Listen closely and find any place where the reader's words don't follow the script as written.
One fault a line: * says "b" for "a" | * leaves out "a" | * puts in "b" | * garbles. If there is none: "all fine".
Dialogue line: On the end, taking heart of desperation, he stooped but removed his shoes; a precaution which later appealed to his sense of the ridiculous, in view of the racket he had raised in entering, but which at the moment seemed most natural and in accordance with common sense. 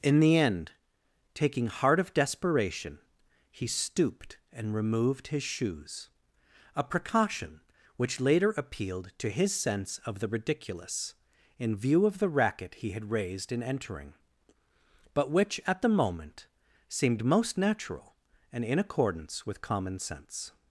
* says "In" for "On"
* says "and" for "but"